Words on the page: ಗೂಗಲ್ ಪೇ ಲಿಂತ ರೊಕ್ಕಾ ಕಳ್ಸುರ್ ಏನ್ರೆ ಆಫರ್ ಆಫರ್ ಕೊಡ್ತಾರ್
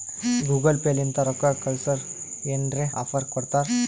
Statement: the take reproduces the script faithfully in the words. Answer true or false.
false